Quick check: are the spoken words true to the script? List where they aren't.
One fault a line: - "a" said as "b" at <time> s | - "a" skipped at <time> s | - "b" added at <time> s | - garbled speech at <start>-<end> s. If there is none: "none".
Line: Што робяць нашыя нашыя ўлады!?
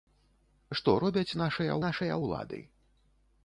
none